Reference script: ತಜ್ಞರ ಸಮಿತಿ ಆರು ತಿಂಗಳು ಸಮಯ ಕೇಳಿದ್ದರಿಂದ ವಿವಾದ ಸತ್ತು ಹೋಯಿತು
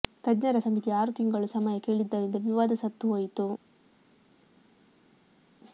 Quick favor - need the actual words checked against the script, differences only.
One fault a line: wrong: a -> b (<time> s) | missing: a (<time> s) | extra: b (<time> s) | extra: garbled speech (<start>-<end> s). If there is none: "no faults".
no faults